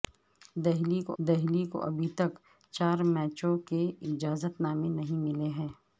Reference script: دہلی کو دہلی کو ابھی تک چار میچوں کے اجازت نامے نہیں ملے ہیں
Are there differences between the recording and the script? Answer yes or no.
no